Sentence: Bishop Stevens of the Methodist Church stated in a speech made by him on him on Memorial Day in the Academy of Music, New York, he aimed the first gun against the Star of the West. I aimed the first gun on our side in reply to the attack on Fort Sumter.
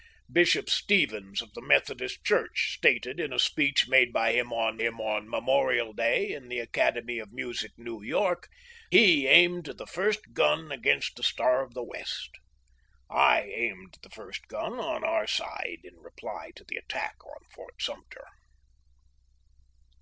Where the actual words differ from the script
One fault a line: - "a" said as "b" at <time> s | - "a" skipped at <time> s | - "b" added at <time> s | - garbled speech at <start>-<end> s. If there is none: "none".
none